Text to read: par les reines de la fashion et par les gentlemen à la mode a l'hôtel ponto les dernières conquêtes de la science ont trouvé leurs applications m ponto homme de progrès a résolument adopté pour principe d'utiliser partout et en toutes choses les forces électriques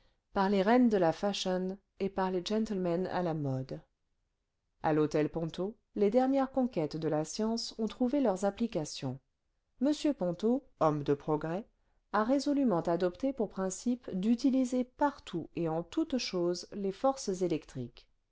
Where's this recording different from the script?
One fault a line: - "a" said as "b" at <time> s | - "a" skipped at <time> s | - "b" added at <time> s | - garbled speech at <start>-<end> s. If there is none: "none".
none